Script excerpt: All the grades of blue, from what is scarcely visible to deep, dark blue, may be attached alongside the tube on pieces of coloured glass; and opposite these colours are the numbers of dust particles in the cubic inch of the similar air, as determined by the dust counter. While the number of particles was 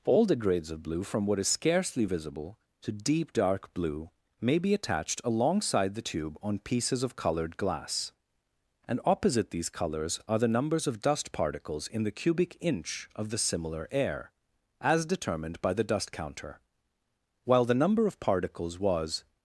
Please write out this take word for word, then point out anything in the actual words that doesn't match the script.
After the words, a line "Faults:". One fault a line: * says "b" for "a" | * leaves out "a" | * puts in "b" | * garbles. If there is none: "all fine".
All the grades of blue, from what is scarcely visible to deep, dark blue, may be attached alongside the tube on pieces of coloured glass; and opposite these colours are the numbers of dust particles in the cubic inch of the similar air, as determined by the dust counter. While the number of particles was
Faults:
all fine